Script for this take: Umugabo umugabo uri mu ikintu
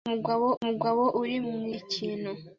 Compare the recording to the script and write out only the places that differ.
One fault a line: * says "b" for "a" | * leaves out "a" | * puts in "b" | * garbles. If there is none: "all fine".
all fine